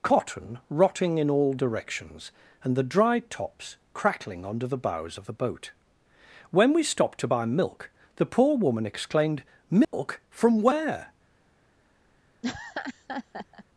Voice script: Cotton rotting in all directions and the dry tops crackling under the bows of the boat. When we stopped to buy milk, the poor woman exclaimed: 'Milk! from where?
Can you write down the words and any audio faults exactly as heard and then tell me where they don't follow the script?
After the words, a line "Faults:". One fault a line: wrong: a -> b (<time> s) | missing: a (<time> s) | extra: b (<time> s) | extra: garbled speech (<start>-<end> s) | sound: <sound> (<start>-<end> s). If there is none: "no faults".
Cotton rotting in all directions and the dry tops crackling under the bows of the boat. When we stopped to buy milk, the poor woman exclaimed: 'Milk! from where?
Faults:
sound: dropout (9.8-9.9 s)
sound: laugh (12.4-13.6 s)